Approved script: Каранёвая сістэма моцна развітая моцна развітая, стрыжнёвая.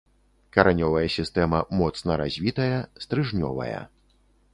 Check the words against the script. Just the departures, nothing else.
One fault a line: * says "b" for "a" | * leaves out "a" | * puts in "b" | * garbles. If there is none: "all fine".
* leaves out "моцна развітая"